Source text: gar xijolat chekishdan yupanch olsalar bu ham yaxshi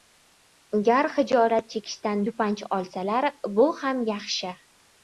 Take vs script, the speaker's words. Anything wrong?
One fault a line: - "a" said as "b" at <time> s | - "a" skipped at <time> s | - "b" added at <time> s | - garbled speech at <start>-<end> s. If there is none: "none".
none